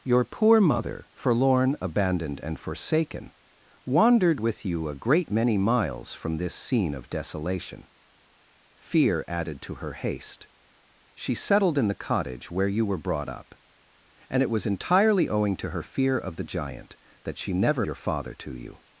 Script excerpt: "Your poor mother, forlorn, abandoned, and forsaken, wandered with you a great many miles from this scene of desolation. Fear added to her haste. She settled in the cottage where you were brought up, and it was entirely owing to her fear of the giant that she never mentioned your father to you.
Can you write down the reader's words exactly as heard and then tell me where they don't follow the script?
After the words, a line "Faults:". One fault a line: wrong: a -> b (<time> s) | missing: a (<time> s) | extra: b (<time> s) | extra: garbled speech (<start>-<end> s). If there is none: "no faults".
"Your poor mother, forlorn, abandoned, and forsaken, wandered with you a great many miles from this scene of desolation. Fear added to her haste. She settled in the cottage where you were brought up, and it was entirely owing to her fear of the giant that she never your father to you.
Faults:
missing: mentioned (17.8 s)